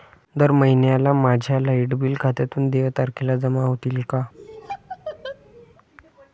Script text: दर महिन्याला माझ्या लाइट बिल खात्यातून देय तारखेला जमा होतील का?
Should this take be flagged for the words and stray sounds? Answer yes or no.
yes